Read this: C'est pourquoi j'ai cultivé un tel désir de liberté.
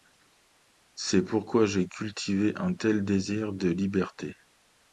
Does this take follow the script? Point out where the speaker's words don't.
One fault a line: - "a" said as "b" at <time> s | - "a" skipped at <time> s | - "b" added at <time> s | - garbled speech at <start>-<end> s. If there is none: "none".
none